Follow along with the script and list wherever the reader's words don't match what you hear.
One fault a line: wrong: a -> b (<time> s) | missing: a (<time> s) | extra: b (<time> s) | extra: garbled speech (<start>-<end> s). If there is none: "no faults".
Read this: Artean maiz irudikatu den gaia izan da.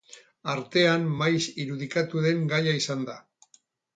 no faults